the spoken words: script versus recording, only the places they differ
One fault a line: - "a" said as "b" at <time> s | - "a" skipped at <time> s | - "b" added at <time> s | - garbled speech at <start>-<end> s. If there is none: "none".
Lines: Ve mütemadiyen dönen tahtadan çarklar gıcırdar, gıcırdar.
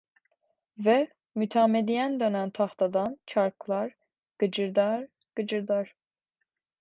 none